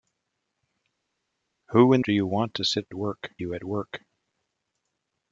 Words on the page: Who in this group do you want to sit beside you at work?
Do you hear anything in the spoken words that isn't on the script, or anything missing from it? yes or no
yes